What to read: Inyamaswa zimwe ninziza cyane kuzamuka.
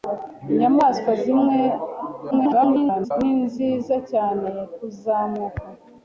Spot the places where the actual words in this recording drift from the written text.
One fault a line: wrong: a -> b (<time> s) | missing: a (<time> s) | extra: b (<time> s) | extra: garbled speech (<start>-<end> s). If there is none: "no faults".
extra: garbled speech (2.3-3.1 s)